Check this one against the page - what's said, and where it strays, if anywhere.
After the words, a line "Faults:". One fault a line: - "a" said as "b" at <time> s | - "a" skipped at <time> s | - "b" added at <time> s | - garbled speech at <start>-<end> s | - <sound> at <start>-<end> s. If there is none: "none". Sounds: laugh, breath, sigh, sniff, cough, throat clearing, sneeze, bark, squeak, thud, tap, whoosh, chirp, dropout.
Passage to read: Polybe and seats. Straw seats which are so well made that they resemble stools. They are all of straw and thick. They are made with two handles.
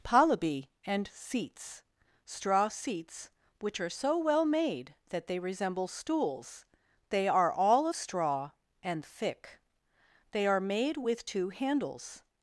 Polybe and seats. Straw seats which are so well made that they resemble stools. They are all of straw and thick. They are made with two handles.
Faults:
none